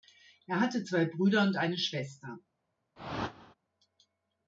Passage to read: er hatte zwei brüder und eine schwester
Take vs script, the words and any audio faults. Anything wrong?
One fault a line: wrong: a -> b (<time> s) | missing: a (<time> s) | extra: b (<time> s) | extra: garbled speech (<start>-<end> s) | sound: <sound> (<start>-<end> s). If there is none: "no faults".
sound: whoosh (3.0-3.5 s)